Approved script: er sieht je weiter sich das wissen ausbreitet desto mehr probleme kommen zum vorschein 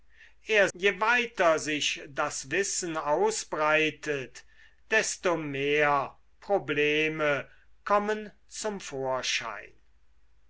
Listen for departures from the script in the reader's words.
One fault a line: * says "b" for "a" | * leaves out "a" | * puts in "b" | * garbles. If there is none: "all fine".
* leaves out "sieht"